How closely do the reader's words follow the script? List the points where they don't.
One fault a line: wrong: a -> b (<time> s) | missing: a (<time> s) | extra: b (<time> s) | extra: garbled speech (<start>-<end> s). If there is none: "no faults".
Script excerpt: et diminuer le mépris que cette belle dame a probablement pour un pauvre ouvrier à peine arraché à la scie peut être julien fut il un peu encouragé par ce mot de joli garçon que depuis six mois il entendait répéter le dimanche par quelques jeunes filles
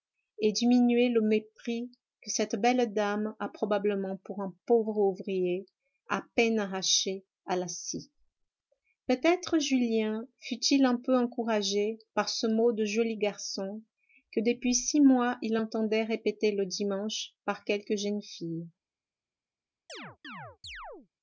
no faults